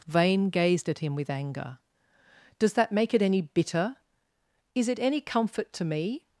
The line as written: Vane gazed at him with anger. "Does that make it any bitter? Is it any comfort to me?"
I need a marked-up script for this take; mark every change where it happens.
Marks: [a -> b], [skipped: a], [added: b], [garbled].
Vane gazed at him with anger. "Does that make it any bitter? Is it any comfort to me?"